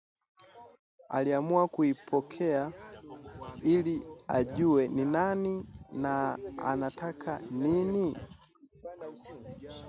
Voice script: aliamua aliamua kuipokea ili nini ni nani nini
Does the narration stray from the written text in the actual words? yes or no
yes